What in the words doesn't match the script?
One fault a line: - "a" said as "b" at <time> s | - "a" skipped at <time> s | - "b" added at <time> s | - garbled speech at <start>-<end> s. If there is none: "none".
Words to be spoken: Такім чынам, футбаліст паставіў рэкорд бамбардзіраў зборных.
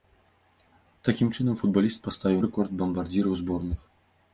none